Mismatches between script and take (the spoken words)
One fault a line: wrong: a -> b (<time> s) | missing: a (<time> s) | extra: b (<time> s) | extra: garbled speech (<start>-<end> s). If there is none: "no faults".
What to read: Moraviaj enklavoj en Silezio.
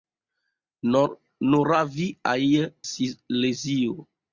missing: enklavoj en (2.4 s)